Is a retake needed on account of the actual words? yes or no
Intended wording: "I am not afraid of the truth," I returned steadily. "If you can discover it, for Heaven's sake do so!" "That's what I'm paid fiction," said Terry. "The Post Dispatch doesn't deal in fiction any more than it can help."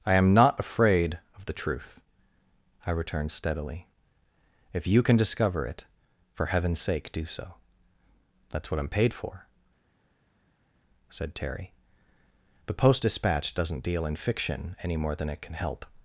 yes